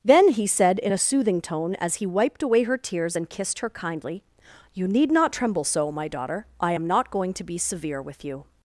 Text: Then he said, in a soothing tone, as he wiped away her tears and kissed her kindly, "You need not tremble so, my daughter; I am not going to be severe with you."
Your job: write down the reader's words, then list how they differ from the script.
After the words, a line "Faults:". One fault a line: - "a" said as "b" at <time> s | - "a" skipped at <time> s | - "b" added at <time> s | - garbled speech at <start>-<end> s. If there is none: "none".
Then he said, in a soothing tone, as he wiped away her tears and kissed her kindly, "You need not tremble so, my daughter; I am not going to be severe with you."
Faults:
none